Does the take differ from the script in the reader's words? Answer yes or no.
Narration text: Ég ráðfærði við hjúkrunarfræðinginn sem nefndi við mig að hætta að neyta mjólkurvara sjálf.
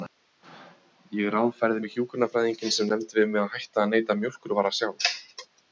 no